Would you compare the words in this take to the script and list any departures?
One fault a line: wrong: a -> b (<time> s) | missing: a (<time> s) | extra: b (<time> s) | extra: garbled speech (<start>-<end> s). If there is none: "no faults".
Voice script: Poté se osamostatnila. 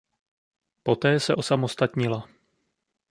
no faults